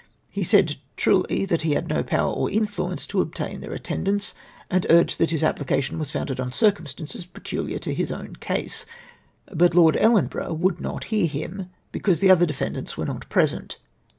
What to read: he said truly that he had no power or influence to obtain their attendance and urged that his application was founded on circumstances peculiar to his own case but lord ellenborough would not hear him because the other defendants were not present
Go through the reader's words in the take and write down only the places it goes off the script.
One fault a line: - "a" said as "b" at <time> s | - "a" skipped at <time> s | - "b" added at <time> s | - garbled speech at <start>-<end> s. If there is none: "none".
none